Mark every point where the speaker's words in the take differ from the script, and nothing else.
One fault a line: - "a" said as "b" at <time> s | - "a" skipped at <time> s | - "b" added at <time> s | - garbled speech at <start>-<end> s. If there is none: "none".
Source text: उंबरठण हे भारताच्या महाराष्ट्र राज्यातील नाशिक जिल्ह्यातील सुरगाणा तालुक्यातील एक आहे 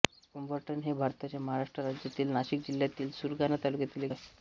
none